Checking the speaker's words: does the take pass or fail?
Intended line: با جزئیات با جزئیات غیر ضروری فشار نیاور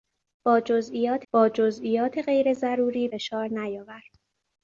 pass